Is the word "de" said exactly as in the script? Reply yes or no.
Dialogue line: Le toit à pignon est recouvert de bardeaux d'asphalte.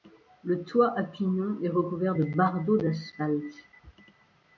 yes